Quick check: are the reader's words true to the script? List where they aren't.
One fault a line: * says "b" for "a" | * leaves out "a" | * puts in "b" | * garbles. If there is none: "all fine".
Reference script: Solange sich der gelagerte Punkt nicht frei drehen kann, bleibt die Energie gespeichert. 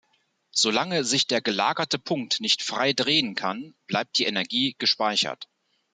all fine